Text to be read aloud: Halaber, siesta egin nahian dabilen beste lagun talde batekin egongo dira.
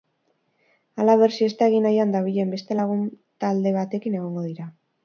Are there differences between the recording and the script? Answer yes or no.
no